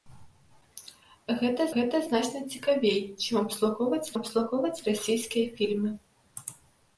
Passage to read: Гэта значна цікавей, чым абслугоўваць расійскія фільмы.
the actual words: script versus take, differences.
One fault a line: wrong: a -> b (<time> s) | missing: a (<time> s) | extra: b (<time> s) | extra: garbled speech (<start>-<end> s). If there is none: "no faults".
extra: гэта (1.7 s)
extra: абслугоўваць (4.2 s)